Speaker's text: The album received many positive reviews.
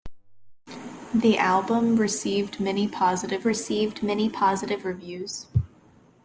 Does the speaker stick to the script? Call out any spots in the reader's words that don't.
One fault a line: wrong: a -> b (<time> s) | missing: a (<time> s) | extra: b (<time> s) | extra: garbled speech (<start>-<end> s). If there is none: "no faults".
extra: received many positive (3.4 s)